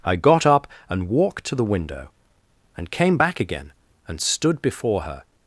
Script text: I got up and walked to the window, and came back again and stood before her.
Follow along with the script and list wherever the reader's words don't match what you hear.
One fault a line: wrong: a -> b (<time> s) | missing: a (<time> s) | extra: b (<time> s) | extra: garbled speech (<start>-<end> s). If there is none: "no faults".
no faults